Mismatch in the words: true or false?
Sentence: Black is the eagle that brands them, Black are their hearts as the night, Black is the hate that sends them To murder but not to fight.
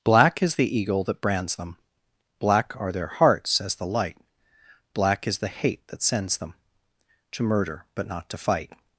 true